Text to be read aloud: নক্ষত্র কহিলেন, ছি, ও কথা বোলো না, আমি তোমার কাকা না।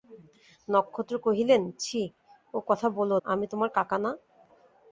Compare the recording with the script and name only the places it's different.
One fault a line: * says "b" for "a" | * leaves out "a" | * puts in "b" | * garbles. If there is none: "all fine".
* leaves out "না"